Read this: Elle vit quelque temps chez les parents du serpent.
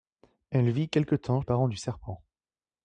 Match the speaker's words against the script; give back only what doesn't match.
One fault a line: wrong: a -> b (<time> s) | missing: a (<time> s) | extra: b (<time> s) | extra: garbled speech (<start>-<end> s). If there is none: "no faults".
missing: chez (1.4 s)